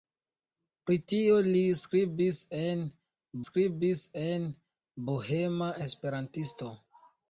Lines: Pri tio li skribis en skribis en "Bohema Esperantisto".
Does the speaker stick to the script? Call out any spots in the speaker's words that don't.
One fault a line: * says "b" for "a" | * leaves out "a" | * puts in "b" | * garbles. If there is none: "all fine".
all fine